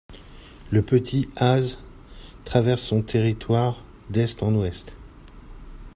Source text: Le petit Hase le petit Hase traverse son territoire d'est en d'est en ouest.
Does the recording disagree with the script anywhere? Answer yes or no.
yes